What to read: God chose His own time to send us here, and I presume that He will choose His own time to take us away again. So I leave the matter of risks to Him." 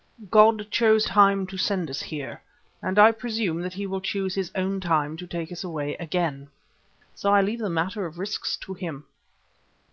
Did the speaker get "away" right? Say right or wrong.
right